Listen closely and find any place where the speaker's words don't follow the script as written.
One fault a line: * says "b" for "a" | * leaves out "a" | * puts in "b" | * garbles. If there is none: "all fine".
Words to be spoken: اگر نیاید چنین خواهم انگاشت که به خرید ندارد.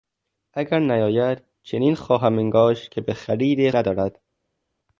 all fine